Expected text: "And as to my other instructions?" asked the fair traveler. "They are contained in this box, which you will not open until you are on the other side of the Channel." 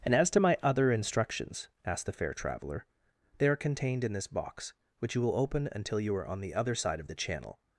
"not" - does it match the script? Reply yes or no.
no